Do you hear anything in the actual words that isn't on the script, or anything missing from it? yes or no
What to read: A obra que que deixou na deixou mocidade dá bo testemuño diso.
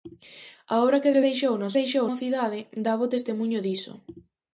no